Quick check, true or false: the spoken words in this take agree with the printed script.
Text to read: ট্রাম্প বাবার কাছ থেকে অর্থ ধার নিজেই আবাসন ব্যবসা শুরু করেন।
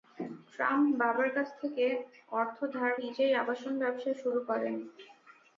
true